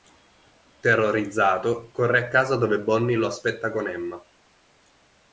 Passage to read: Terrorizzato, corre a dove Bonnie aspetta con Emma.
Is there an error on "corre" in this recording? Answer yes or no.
no